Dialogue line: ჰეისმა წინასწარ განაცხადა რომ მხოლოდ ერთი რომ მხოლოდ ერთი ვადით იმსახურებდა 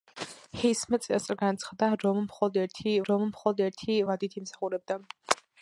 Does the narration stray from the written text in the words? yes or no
no